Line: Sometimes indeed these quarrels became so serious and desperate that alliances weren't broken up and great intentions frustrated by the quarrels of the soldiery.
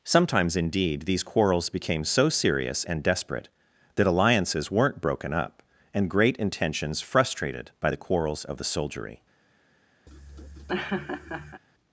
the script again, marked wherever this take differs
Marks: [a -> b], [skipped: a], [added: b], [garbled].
Sometimes indeed these quarrels became so serious and desperate that alliances weren't broken up and great intentions frustrated by the quarrels of the soldiery.